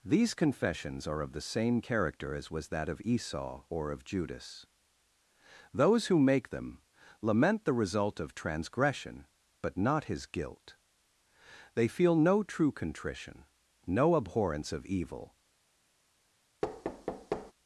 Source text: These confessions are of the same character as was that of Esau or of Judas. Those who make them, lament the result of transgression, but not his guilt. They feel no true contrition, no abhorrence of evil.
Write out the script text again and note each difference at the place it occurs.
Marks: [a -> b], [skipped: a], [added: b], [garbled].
These confessions are of the same character as was that of Esau or of Judas. Those who make them, lament the result of transgression, but not his guilt. They feel no true contrition, no abhorrence of evil.